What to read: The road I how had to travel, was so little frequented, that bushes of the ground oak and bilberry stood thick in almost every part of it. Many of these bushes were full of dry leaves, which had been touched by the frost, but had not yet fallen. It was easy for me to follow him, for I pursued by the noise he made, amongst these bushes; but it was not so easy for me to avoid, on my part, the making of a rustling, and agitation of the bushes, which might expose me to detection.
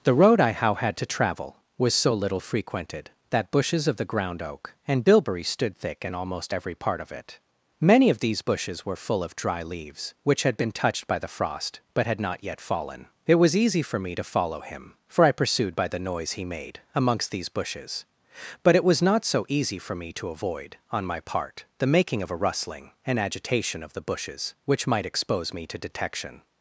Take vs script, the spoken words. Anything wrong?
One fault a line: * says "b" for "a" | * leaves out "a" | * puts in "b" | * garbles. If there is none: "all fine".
all fine